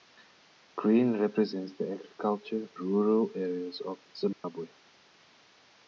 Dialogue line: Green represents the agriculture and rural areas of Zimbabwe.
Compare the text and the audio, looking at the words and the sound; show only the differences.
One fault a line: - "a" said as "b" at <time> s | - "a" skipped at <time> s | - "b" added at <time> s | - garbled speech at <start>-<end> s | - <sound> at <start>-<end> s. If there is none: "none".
- "and" skipped at 2.7 s
- dropout at 4.3-4.4 s